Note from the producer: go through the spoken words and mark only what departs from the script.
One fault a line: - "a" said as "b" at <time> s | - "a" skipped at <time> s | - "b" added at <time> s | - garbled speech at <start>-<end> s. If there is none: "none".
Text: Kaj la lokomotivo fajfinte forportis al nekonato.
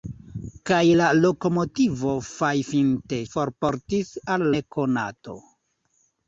none